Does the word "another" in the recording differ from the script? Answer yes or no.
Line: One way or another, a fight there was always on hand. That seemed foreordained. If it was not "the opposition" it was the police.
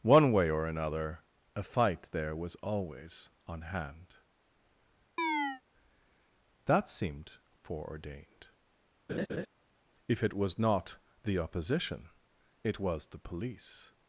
no